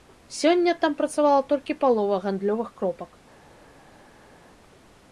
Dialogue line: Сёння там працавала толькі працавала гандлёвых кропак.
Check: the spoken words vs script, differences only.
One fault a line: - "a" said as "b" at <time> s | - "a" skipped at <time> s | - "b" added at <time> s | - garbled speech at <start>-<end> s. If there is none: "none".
- "працавала" said as "палова" at 1.8 s